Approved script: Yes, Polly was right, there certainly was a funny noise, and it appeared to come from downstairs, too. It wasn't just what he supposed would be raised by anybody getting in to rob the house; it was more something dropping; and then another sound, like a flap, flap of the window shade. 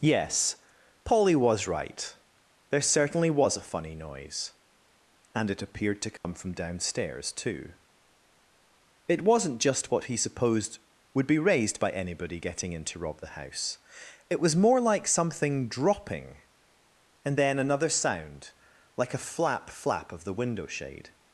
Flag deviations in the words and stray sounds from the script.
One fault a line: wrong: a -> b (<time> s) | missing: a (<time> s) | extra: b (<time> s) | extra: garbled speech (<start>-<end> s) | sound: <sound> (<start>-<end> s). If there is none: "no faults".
sound: dropout (6.2-6.2 s)
extra: like (14.8 s)